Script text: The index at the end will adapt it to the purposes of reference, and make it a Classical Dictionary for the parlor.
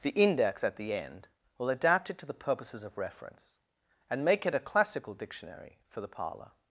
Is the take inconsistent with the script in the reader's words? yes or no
no